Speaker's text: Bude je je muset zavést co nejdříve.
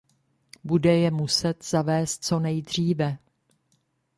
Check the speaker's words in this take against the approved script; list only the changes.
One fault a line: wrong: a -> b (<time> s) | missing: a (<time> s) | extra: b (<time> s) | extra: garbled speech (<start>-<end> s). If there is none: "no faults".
missing: je (1.1 s)